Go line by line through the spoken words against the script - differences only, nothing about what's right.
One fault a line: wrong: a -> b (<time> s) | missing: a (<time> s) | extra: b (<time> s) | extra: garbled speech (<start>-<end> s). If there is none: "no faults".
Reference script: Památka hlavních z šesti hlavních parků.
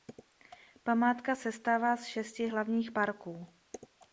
wrong: hlavních -> sestává (1.4 s)